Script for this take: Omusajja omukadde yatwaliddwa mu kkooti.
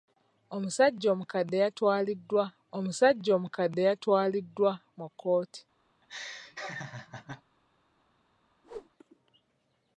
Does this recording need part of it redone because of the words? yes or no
yes